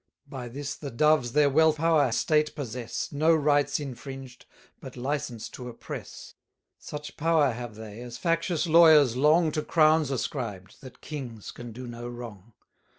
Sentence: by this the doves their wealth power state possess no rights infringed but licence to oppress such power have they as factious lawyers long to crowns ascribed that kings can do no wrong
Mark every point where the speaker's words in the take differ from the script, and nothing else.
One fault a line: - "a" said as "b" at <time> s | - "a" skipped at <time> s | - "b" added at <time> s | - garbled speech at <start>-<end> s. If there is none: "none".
none